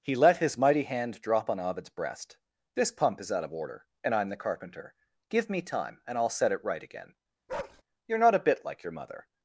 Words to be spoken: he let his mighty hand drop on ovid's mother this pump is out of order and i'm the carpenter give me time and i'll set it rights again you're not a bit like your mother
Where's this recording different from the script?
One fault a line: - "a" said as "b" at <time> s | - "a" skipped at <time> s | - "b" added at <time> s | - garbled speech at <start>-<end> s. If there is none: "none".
- "mother" said as "breast" at 1.9 s
- "rights" said as "right" at 6.6 s